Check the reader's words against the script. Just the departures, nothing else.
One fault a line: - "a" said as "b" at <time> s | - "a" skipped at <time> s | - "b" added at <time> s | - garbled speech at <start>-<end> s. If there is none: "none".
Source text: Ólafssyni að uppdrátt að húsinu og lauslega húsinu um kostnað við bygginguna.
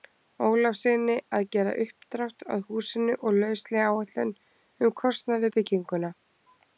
- "gera" added at 1.6 s
- "húsinu" said as "áætlun" at 4.0 s